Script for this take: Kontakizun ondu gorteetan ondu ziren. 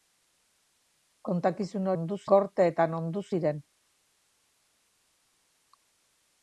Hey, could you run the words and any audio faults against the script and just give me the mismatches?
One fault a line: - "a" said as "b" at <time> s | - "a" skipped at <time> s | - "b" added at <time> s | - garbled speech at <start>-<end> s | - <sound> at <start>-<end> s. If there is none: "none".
none